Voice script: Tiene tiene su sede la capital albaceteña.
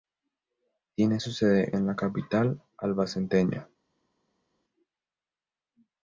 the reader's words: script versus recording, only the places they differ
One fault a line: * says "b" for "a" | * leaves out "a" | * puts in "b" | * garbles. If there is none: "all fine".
* leaves out "tiene"
* puts in "en"